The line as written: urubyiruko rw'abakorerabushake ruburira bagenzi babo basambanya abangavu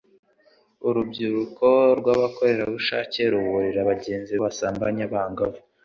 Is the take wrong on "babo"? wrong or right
wrong